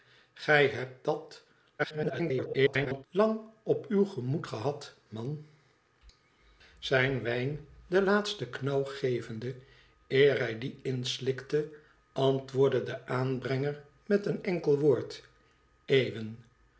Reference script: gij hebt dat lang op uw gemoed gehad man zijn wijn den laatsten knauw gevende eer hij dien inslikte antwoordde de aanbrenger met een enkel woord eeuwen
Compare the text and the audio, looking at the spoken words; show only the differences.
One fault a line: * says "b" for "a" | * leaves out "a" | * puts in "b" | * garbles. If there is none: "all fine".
* garbles